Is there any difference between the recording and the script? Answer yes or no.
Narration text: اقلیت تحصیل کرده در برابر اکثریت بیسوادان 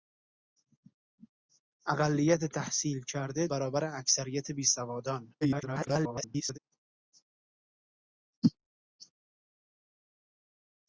yes